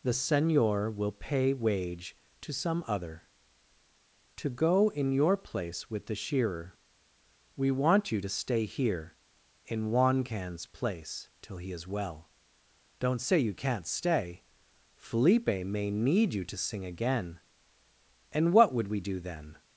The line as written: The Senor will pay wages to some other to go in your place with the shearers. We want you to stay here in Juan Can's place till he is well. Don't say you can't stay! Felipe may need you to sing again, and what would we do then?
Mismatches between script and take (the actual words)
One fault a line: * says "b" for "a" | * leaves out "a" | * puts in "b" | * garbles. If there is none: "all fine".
* says "wage" for "wages"
* says "shearer" for "shearers"